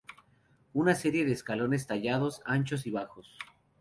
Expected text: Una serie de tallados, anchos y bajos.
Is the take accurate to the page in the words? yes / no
no